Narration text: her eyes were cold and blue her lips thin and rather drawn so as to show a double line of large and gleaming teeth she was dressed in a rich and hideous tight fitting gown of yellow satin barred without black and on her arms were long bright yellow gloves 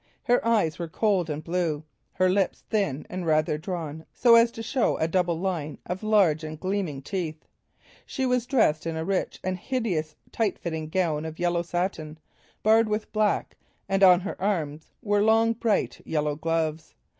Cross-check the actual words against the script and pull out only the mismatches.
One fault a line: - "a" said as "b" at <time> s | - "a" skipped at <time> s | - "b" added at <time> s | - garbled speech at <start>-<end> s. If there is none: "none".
- "without" said as "with" at 12.9 s